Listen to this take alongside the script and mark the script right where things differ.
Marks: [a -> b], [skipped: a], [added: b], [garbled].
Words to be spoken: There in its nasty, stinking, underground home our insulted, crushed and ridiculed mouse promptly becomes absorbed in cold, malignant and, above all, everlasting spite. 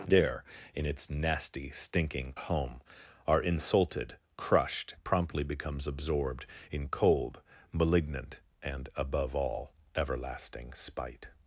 There in its nasty, stinking, [skipped: underground] home our insulted, crushed [skipped: and ridiculed mouse] promptly becomes absorbed in cold, malignant and, above all, everlasting spite.